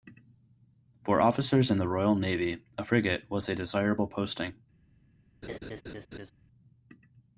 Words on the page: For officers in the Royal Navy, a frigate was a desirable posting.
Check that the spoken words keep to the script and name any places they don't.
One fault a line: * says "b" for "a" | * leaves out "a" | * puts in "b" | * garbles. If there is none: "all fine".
all fine